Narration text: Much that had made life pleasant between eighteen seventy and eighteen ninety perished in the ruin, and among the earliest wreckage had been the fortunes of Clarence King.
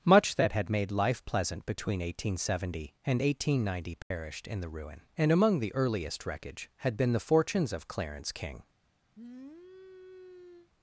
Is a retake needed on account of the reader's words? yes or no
no